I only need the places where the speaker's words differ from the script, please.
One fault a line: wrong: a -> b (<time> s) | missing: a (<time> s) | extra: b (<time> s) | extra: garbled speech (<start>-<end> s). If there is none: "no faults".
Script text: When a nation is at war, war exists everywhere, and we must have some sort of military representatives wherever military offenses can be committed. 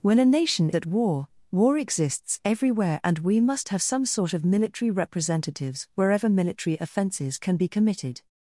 missing: is (0.7 s)